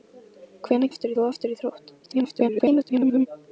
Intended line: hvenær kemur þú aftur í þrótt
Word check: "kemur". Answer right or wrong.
wrong